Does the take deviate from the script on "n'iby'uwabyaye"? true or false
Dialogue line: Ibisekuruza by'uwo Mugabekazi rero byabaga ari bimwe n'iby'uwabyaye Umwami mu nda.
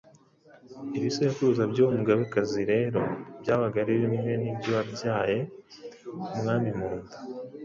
false